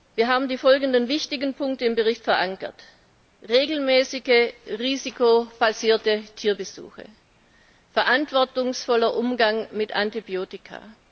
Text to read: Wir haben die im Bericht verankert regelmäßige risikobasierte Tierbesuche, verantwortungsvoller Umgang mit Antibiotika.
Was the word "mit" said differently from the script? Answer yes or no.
no